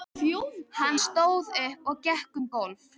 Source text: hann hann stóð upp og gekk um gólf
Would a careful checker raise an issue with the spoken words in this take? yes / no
yes